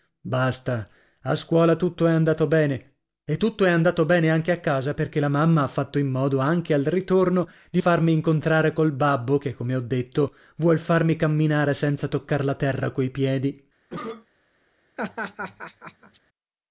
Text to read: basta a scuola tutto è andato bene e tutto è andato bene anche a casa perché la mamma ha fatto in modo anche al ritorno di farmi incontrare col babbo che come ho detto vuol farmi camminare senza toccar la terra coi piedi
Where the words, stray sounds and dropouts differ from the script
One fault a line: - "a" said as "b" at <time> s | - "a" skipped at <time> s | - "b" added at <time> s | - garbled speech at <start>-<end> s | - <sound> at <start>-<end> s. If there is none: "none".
- cough at 13.9-14.3 s
- laugh at 15.0-16.2 s